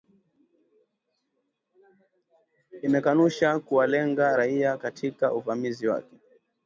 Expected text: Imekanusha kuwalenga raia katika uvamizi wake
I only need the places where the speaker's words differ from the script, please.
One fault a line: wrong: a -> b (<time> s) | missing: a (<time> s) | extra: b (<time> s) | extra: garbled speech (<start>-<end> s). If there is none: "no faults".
no faults